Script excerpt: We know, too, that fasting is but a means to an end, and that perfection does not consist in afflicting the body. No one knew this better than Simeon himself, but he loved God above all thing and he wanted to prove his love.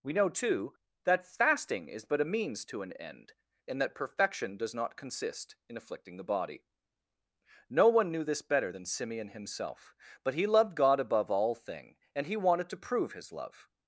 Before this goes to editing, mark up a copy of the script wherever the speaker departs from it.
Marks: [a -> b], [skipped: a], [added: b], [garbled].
We know, too, that fasting is but a means to an end, and that perfection does not consist in afflicting the body. No one knew this better than Simeon himself, but he loved God above all thing and he wanted to prove his love.